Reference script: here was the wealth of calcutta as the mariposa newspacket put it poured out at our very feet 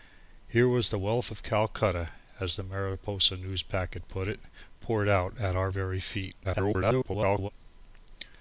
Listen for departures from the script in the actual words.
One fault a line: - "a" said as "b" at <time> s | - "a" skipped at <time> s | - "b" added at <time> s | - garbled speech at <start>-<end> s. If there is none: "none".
- garbled speech at 6.4-7.5 s